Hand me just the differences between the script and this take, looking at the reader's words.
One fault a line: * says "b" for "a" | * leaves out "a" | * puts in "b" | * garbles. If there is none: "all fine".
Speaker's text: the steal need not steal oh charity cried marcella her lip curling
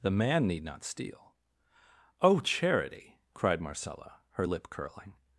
* says "man" for "steal"